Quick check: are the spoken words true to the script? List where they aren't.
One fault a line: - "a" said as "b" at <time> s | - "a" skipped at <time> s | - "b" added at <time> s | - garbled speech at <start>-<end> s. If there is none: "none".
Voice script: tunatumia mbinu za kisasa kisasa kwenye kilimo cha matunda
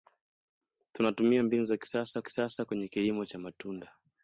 none